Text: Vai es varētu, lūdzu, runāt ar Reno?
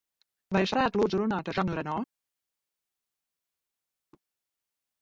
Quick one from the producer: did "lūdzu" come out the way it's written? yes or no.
yes